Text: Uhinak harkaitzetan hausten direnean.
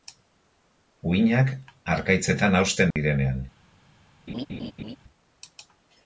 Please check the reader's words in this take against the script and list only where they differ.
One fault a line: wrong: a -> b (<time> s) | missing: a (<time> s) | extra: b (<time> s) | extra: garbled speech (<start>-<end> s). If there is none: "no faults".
no faults